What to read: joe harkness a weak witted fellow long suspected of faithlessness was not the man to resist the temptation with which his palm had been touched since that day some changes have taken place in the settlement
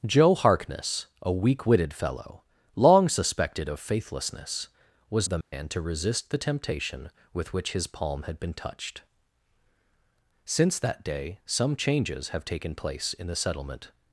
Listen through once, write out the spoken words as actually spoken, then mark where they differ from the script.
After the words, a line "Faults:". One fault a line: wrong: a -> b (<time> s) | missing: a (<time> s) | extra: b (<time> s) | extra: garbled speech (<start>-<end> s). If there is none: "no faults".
joe harkness a weak witted fellow long suspected of faithlessness was the man to resist the temptation with which his palm had been touched since that day some changes have taken place in the settlement
Faults:
missing: not (5.3 s)